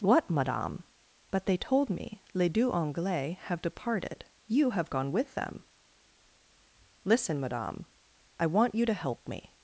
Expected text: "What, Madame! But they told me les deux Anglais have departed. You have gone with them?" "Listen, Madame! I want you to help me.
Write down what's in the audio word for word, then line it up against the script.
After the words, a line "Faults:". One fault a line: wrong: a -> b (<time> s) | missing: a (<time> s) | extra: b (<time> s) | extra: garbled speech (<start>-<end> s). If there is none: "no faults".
"What, Madame! But they told me les deux Anglais have departed. You have gone with them?" "Listen, Madame! I want you to help me.
Faults:
no faults